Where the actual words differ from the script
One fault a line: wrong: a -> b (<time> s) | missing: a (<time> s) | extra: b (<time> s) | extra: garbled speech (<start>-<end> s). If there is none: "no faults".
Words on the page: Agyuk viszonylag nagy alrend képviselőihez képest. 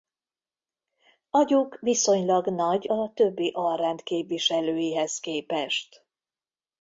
extra: a többi (2.9 s)